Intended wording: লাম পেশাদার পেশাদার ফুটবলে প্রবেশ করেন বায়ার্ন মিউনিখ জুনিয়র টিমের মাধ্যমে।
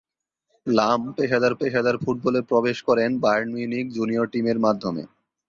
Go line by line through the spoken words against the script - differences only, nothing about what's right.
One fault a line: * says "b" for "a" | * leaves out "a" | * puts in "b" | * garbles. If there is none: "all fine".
all fine